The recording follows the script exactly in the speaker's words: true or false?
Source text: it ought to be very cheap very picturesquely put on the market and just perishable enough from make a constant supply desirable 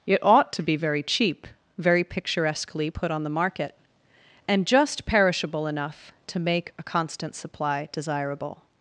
false